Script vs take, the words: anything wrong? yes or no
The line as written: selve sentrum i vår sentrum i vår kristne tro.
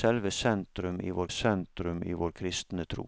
no